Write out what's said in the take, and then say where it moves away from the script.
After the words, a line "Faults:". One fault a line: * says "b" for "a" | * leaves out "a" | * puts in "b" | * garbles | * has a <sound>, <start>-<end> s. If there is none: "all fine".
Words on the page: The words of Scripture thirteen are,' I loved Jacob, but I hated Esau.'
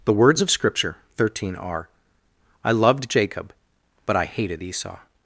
The words of Scripture thirteen are,' I loved Jacob, but I hated Esau.'
Faults:
all fine